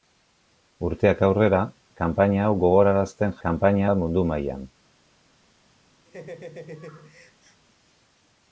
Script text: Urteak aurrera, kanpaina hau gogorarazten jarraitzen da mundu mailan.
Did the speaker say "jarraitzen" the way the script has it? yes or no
no